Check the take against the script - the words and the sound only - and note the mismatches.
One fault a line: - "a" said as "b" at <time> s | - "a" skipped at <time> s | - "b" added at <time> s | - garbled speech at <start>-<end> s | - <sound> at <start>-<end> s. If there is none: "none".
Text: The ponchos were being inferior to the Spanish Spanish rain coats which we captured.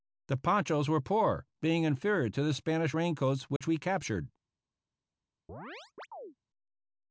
- "poor" added at 1.0 s
- "Spanish" skipped at 3.0 s
- dropout at 3.6-3.6 s
- chirp at 5.5-6.4 s